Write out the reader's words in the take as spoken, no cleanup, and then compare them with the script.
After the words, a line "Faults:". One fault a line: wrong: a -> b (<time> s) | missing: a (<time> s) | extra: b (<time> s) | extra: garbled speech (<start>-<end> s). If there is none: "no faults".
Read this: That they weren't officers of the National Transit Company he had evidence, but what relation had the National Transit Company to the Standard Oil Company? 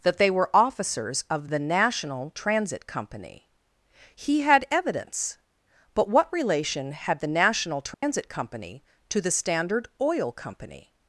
That they were officers of the National Transit Company he had evidence, but what relation had the National Transit Company to the Standard Oil Company?
Faults:
wrong: weren't -> were (0.3 s)